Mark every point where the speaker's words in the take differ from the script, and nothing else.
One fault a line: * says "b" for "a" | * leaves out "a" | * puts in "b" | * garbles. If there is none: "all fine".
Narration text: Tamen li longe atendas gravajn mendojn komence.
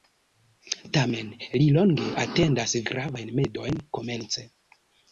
all fine